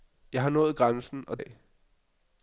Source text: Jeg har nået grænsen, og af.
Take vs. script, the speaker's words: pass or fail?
pass